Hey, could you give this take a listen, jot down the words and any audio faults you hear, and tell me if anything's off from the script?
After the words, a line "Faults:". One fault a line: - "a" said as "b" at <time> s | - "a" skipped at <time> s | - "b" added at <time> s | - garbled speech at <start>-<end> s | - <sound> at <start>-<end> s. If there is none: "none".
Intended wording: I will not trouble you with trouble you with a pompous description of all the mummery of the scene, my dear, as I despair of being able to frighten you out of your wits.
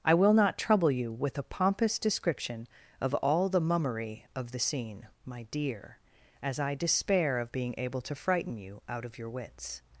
I will not trouble you with a pompous description of all the mummery of the scene, my dear, as I despair of being able to frighten you out of your wits.
Faults:
- "trouble you with" skipped at 1.4 s